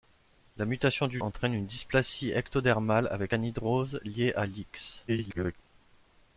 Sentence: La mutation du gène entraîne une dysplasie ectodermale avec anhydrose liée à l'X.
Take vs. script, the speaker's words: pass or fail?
fail